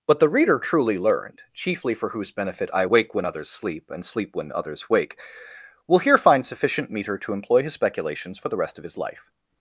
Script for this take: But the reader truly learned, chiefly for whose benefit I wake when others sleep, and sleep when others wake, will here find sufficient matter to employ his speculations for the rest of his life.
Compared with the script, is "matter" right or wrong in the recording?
wrong